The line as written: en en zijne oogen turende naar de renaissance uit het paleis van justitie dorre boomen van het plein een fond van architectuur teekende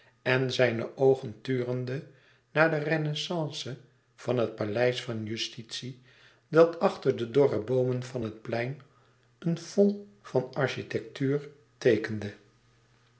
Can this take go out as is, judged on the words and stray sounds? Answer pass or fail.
fail